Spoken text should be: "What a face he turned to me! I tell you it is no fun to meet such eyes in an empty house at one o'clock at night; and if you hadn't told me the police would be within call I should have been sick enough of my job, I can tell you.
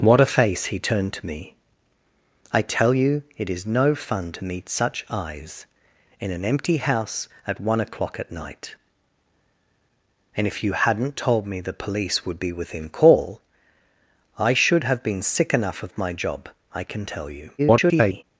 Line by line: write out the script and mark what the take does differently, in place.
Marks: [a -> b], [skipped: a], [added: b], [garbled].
"What a face he turned to me! I tell you it is no fun to meet such eyes in an empty house at one o'clock at night; and if you hadn't told me the police would be within call I should have been sick enough of my job, I can tell you. [garbled]